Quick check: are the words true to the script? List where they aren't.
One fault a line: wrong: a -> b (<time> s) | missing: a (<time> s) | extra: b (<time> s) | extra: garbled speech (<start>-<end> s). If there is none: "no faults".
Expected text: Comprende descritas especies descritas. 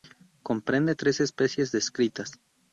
wrong: descritas -> tres (0.9 s)